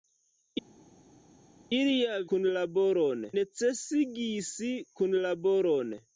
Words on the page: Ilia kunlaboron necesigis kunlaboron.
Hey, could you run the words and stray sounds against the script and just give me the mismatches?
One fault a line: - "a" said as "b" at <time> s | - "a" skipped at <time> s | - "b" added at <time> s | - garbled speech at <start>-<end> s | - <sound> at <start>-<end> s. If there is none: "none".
none